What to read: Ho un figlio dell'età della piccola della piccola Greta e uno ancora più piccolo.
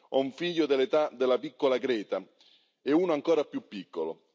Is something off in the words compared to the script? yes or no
yes